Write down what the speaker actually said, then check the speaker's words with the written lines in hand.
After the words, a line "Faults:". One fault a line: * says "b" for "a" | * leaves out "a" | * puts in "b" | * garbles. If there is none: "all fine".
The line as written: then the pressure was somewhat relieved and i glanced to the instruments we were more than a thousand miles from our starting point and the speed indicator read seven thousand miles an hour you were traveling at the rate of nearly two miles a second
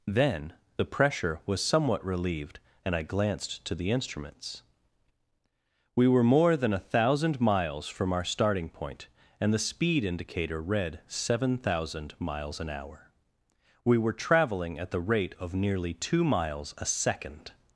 then the pressure was somewhat relieved and i glanced to the instruments we were more than a thousand miles from our starting point and the speed indicator read seven thousand miles an hour we were traveling at the rate of nearly two miles a second
Faults:
* says "we" for "you"